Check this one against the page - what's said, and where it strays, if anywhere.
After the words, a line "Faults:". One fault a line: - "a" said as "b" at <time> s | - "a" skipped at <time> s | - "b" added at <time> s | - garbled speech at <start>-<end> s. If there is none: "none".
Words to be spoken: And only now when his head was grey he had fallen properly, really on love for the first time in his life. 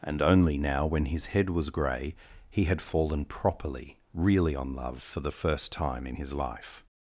And only now when his head was grey he had fallen properly, really on love for the first time in his life.
Faults:
none